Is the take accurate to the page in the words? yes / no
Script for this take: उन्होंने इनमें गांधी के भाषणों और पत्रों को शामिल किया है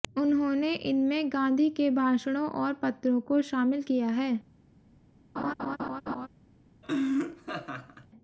yes